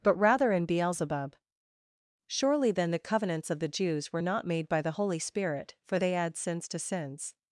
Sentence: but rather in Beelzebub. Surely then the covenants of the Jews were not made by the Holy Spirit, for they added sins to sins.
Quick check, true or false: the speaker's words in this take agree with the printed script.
false